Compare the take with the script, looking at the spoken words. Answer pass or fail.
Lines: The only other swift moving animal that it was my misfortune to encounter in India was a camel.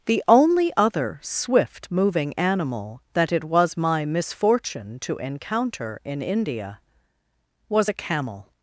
pass